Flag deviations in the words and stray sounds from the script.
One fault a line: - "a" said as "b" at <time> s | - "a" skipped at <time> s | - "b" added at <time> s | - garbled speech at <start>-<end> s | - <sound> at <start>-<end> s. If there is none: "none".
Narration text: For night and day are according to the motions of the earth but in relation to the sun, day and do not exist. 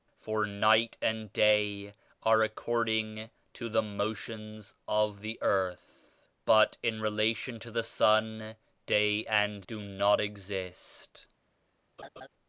- laugh at 12.0-12.3 s